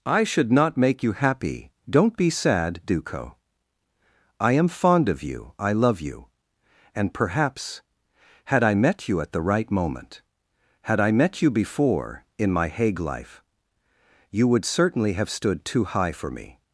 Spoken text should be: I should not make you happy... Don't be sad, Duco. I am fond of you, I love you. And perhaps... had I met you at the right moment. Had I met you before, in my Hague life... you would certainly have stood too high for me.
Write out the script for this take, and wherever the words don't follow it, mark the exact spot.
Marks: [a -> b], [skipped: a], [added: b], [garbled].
I should not make you happy... Don't be sad, Duco. I am fond of you, I love you. And perhaps... had I met you at the right moment. Had I met you before, in my Hague life... you would certainly have stood too high for me.